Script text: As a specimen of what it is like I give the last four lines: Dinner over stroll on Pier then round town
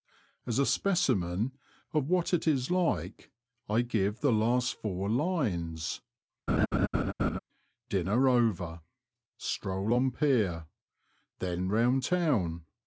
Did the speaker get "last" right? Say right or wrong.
right